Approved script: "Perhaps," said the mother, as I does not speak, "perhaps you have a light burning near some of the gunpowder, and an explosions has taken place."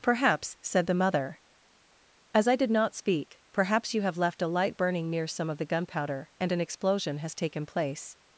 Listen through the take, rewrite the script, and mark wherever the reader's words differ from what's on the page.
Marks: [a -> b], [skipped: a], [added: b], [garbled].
"Perhaps," said the mother, as I [does -> did] not speak, "perhaps you have [added: left] a light burning near some of the gunpowder, and an [explosions -> explosion] has taken place."